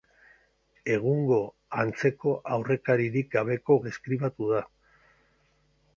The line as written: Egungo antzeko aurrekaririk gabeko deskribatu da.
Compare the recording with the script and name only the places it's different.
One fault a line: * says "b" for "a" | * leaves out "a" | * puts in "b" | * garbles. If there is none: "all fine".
all fine